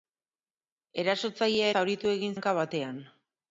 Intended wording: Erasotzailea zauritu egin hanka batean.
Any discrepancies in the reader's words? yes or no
no